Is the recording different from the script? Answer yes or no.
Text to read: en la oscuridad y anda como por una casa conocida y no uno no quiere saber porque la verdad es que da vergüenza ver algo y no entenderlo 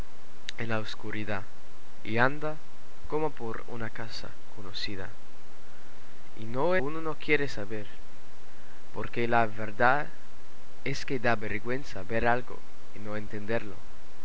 no